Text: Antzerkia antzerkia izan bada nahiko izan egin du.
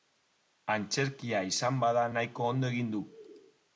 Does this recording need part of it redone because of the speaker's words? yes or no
yes